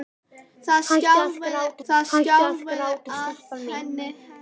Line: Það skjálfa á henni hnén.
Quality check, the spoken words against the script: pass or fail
fail